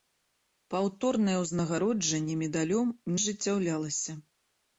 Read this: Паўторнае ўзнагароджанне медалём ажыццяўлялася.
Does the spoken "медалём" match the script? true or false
true